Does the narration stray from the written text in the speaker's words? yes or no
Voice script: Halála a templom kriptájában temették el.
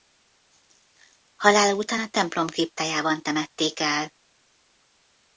yes